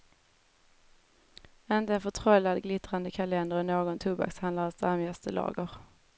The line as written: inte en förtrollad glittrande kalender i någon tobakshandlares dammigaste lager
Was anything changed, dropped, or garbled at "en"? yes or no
no